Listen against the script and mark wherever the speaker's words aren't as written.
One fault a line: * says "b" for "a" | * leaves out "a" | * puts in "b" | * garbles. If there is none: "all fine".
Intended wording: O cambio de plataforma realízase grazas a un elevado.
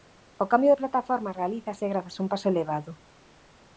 * puts in "paso"